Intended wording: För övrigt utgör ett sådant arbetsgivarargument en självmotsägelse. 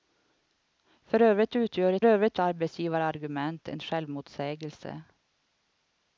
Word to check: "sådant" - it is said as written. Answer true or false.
false